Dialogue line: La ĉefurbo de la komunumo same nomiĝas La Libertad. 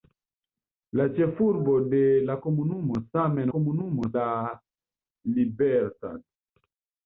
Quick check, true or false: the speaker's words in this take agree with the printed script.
false